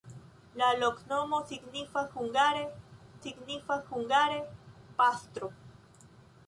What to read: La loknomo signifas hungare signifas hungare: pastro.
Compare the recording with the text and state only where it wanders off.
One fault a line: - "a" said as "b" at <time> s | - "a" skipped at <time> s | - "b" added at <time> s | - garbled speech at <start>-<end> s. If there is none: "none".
none